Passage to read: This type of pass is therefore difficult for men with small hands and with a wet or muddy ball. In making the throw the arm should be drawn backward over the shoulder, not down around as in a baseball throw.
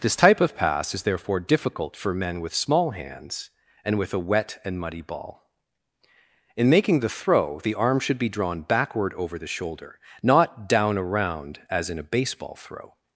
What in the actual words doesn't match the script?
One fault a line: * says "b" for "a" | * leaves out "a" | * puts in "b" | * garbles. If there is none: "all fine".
* says "and" for "or"